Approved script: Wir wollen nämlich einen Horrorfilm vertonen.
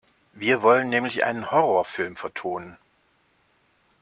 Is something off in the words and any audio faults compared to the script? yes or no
no